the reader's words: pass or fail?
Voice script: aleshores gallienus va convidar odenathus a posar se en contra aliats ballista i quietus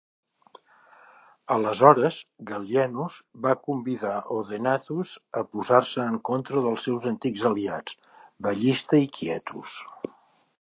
fail